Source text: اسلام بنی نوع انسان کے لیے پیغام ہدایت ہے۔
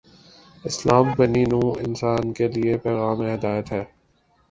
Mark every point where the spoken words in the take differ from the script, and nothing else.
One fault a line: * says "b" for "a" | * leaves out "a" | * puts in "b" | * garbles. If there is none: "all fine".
all fine